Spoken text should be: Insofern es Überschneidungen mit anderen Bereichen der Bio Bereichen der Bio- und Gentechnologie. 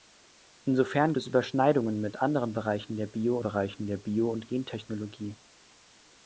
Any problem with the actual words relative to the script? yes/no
no